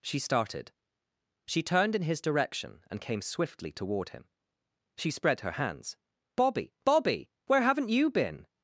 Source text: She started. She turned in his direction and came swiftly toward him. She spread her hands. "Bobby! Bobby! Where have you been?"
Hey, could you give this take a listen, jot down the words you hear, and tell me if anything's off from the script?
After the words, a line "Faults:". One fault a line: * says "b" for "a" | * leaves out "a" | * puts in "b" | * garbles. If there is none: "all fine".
She started. She turned in his direction and came swiftly toward him. She spread her hands. "Bobby! Bobby! Where haven't you been?"
Faults:
* says "haven't" for "have"